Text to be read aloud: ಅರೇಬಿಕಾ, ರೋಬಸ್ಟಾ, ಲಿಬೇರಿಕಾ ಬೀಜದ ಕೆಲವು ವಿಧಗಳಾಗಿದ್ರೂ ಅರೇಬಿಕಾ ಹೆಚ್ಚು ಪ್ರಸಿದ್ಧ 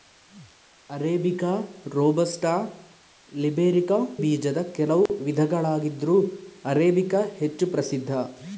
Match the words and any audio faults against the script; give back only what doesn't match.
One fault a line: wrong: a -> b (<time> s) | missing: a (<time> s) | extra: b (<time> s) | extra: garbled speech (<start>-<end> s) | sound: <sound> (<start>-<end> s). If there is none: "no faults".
sound: dropout (5.1-5.1 s)